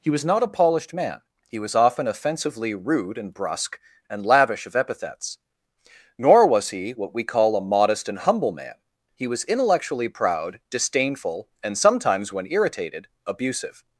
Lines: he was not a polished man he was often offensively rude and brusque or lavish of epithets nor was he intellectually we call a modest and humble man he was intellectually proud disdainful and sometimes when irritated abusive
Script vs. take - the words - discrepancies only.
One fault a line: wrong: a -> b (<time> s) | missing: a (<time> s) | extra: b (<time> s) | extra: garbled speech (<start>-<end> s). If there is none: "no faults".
wrong: or -> and (4.1 s)
wrong: intellectually -> what (6.9 s)